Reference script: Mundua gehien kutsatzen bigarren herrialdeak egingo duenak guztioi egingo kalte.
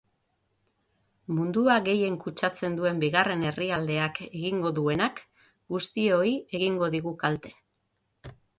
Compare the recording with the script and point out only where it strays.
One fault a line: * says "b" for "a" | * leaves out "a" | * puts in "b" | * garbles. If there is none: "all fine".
* puts in "duen"
* puts in "digu"